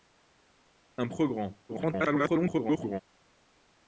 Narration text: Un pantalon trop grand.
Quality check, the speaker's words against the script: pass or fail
fail